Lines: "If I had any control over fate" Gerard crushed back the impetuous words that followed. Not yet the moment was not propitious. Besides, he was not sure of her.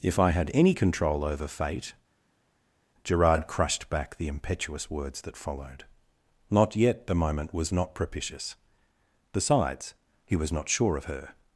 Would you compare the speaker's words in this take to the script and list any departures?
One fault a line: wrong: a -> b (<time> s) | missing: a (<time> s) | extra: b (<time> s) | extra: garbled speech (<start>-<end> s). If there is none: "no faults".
no faults